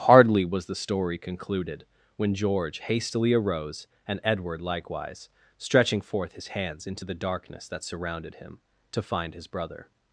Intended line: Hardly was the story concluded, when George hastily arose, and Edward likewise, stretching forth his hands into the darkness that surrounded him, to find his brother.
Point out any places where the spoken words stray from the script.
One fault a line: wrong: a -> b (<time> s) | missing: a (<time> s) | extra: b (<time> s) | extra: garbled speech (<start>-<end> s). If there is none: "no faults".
no faults